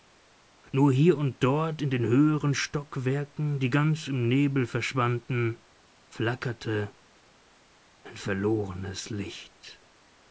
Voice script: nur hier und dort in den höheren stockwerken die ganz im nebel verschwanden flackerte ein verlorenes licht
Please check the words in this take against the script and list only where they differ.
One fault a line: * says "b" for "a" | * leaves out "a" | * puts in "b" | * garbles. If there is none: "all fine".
all fine